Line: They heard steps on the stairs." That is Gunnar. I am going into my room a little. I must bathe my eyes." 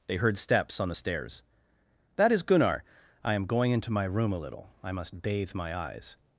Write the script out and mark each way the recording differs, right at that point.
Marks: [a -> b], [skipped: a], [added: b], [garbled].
They heard steps on the stairs." That is Gunnar. I am going into my room a little. I must bathe my eyes."